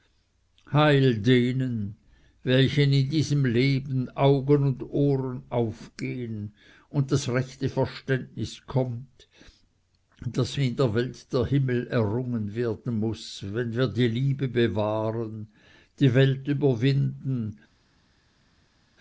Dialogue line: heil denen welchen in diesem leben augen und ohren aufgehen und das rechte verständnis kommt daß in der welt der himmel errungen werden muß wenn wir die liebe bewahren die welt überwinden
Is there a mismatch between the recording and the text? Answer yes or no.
no